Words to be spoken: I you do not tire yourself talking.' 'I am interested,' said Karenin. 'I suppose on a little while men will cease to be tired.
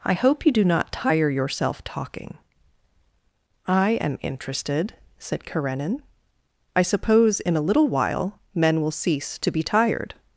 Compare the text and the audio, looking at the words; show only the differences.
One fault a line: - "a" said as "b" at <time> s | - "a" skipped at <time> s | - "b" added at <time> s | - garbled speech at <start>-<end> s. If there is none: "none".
- "hope" added at 0.1 s
- "on" said as "in" at 7.4 s